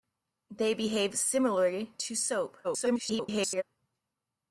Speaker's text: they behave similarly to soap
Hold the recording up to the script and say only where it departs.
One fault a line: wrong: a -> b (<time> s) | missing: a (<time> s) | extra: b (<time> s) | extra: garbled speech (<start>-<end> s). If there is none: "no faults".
extra: garbled speech (2.6-3.6 s)